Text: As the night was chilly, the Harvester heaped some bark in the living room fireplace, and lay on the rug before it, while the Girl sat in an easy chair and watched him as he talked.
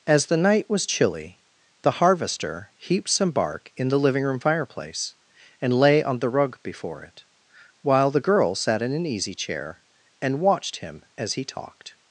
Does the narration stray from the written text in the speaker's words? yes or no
no